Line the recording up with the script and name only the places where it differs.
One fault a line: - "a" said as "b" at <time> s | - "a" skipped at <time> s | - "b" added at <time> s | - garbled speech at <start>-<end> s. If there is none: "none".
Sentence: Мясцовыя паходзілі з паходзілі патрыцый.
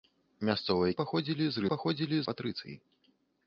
none